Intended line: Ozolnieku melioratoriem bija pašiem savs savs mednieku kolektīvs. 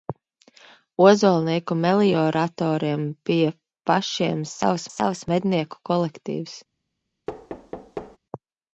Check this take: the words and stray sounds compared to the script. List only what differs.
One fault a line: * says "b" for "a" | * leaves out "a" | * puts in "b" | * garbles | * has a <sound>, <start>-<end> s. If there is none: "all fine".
* has a thud, 7.3-8.2 s